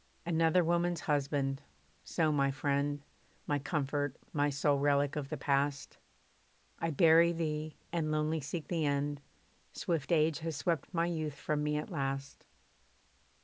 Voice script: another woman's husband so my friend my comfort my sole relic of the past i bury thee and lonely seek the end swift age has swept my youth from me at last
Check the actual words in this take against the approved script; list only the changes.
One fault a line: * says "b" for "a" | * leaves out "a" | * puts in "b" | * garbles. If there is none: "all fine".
all fine